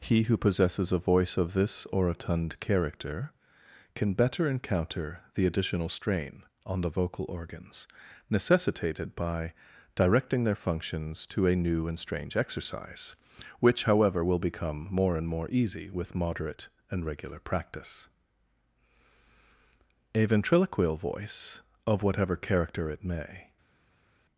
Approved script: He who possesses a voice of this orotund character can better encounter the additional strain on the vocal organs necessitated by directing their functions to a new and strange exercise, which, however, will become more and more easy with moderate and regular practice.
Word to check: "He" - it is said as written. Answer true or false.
true